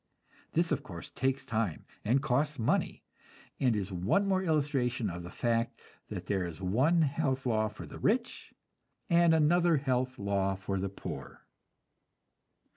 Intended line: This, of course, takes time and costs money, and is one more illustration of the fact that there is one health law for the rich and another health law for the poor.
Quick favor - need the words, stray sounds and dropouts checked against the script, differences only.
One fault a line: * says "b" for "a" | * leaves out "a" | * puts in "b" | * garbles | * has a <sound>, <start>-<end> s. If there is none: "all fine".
all fine